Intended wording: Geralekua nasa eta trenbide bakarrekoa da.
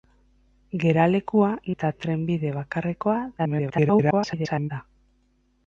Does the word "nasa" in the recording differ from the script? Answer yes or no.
yes